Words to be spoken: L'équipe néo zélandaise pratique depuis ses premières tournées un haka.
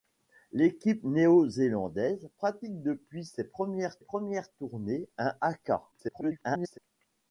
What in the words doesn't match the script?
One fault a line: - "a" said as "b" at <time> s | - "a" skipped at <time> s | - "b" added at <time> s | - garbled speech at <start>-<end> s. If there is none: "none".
- "premières" added at 4.0 s
- garbled speech at 5.9-6.8 s